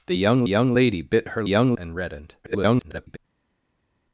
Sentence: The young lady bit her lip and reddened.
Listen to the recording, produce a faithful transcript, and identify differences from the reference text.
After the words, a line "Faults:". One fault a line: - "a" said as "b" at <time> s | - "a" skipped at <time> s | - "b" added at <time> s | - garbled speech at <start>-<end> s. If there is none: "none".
The young young lady bit her young and reddened. [garbled]
Faults:
- "young" added at 0.5 s
- "lip" said as "young" at 1.5 s
- garbled speech at 2.4-3.2 s